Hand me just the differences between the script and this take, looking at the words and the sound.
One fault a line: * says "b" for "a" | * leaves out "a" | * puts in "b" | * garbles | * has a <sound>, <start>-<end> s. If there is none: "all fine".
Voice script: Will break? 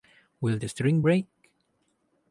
* puts in "the string"